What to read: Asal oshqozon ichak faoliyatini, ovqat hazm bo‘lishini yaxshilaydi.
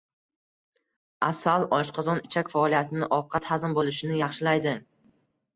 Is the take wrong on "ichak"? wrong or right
right